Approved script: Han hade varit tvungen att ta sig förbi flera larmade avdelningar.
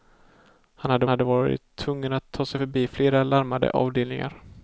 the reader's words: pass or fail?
fail